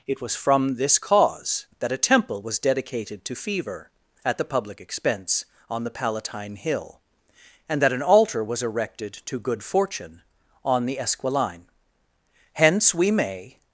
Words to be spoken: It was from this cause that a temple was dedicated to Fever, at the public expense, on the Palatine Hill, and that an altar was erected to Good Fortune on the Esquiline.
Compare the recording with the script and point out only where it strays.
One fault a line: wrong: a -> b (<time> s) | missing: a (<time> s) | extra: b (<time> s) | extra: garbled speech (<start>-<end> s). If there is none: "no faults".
extra: Hence we may (12.5 s)